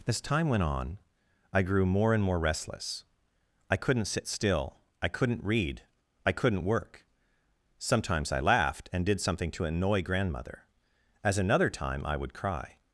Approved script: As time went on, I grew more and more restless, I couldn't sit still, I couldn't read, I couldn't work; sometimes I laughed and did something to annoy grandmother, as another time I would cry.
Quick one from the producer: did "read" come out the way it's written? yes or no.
yes